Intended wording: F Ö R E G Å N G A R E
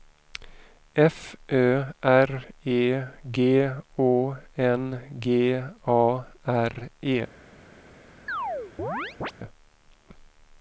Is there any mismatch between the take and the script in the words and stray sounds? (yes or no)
yes